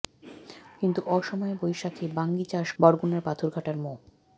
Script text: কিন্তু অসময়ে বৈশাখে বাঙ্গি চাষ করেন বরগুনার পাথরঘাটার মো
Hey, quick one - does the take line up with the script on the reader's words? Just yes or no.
no